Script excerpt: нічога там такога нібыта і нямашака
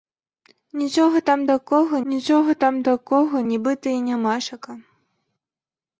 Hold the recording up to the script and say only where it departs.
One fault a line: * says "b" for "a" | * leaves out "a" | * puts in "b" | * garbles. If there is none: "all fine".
* puts in "нічога там такога"